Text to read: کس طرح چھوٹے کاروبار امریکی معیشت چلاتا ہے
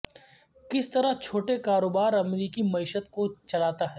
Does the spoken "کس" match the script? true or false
true